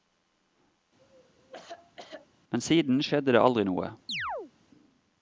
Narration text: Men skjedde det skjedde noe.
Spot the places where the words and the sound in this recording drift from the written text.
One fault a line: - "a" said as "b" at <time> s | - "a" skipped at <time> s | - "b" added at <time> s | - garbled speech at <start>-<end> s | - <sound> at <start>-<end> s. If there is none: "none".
- cough at 1.0-2.3 s
- "siden" added at 2.6 s
- "skjedde" said as "aldri" at 3.4 s
- chirp at 4.1-4.5 s